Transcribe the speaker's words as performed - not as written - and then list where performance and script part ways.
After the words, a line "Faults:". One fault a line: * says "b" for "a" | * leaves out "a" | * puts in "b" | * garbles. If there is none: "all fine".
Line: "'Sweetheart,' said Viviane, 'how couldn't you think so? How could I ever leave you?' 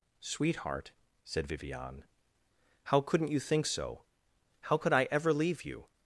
"'Sweetheart,' said Viviane, 'how couldn't you think so? How could I ever leave you?'
Faults:
all fine